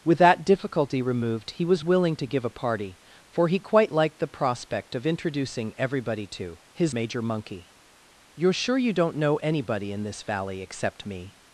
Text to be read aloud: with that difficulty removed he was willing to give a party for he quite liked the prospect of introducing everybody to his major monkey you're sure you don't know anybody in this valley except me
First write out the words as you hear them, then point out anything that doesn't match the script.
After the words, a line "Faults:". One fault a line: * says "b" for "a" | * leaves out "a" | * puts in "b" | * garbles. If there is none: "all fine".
with that difficulty removed he was willing to give a party for he quite liked the prospect of introducing everybody to his major monkey you're sure you don't know anybody in this valley except me
Faults:
all fine